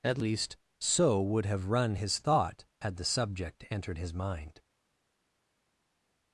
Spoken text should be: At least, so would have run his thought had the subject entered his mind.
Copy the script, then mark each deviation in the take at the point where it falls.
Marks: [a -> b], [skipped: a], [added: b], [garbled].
At least, so would have run his thought had the subject entered his mind.